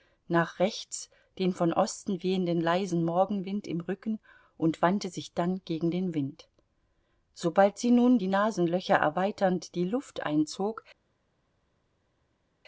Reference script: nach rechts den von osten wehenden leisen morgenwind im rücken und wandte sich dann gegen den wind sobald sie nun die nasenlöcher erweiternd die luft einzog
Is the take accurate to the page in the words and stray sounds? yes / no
yes